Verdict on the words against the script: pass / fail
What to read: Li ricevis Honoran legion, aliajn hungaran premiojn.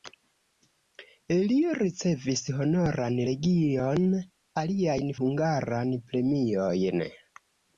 pass